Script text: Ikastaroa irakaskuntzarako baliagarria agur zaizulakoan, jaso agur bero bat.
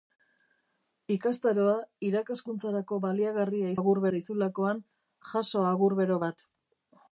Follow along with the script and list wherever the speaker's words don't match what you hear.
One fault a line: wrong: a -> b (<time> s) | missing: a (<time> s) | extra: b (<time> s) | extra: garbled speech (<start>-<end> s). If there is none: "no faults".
no faults